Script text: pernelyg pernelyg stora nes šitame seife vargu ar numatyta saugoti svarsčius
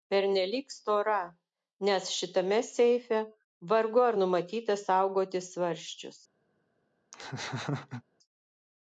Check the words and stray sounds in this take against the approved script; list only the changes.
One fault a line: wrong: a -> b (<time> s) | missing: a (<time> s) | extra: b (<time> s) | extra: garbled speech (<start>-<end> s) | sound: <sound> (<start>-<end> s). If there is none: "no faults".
missing: pernelyg (0.7 s)
sound: laugh (7.1-8.0 s)